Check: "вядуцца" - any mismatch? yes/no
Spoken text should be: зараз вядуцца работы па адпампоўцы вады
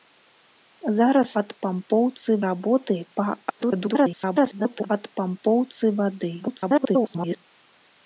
yes